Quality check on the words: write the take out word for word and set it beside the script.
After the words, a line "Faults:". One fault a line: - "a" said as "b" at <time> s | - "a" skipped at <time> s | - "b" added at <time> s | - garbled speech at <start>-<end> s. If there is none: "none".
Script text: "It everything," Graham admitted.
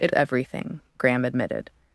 "It everything," Graham admitted.
Faults:
none